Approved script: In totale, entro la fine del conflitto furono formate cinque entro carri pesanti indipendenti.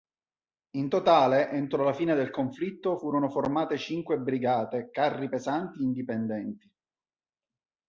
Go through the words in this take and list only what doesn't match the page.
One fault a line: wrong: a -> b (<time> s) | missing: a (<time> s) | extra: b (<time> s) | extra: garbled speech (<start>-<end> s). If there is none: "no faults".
wrong: entro -> brigate (4.2 s)